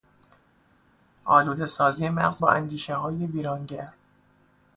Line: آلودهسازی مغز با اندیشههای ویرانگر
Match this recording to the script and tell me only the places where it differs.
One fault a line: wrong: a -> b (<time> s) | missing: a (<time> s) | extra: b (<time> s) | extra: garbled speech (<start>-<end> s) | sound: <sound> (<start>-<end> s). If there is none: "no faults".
no faults